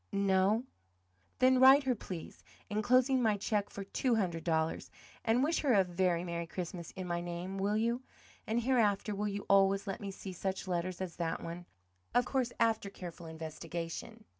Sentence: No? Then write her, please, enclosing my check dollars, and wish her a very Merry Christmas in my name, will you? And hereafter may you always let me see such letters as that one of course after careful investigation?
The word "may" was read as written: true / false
false